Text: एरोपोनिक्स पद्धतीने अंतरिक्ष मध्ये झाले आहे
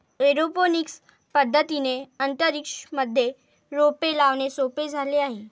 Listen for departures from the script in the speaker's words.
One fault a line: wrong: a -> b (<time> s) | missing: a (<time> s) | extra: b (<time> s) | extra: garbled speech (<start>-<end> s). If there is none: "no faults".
extra: रोपे लावणे सोपे (3.7 s)